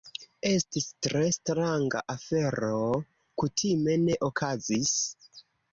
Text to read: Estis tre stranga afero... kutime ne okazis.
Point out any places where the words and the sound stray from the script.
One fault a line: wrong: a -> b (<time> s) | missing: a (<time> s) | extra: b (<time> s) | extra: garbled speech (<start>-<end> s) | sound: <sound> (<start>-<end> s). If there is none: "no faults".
no faults